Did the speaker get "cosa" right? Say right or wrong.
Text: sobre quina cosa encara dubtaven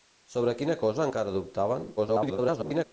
right